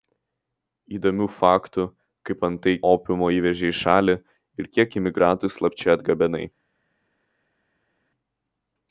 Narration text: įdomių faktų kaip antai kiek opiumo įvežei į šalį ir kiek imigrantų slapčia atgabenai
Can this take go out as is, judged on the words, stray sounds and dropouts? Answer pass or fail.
fail